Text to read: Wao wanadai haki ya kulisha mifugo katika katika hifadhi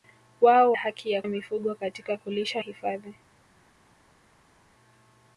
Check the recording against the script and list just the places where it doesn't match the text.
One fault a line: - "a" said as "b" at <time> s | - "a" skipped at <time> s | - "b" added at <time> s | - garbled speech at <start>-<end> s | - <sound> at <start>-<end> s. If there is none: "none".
- "wanadai" skipped at 0.7 s
- "kulisha" skipped at 1.2 s
- "katika" said as "kulisha" at 2.2 s